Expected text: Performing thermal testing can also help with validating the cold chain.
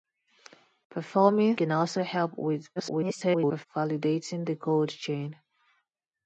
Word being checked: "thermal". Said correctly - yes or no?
no